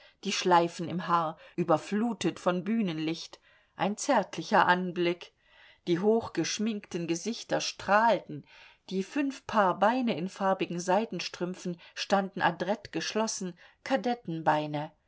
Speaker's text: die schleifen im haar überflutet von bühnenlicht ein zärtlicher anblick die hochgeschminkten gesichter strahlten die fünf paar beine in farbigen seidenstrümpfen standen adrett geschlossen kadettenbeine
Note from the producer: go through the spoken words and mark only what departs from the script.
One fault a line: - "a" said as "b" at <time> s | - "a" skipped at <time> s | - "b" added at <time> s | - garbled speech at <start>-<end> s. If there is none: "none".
none